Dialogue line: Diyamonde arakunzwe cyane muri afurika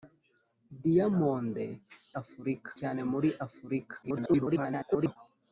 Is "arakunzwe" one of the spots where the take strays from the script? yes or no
yes